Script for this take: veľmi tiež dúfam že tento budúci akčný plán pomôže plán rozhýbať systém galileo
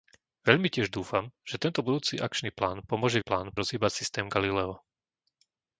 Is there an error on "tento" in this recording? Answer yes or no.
no